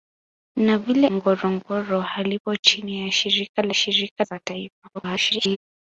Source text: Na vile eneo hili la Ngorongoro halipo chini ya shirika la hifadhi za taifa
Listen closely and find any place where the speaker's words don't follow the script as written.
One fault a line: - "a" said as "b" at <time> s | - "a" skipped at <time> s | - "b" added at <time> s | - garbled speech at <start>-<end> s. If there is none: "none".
- "eneo hili la" skipped at 1.1 s
- "hifadhi" said as "shirika" at 3.7 s
- garbled speech at 4.9-5.6 s